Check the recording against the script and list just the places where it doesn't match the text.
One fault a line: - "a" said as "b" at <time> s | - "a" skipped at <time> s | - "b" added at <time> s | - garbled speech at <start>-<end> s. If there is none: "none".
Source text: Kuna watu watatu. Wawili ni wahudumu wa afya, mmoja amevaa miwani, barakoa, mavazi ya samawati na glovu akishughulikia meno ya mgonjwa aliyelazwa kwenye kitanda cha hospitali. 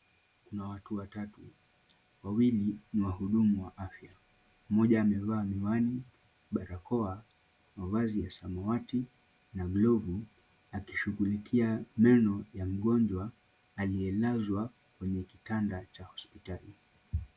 none